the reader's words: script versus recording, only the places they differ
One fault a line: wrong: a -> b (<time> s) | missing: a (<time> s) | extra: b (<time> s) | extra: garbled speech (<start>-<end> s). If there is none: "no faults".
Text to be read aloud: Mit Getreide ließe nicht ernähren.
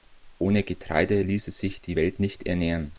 wrong: Mit -> Ohne (0.4 s)
extra: sich die Welt (1.5 s)